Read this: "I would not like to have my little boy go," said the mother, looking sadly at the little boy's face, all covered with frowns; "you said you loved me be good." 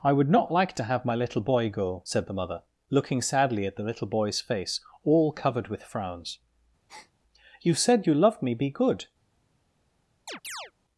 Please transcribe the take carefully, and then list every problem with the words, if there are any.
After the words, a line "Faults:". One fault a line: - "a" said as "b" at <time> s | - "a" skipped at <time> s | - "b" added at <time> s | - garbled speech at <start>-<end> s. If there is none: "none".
"I would not like to have my little boy go," said the mother, looking sadly at the little boy's face, all covered with frowns; "you said you loved me be good."
Faults:
none